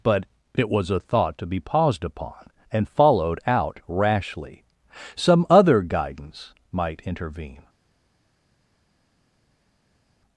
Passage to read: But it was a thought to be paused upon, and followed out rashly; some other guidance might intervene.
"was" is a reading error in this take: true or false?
false